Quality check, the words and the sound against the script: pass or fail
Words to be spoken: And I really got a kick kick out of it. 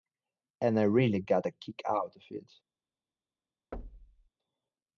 fail